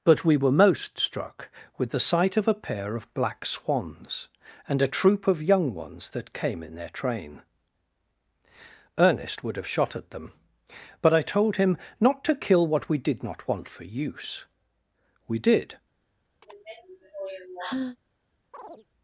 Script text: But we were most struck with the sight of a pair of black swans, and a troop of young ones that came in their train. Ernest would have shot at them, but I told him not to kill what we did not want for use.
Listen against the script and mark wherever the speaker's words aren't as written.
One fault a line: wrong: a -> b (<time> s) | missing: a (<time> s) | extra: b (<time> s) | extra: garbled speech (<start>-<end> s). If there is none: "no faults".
extra: We did (15.3 s)